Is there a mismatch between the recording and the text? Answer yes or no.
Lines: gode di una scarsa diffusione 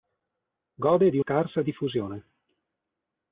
yes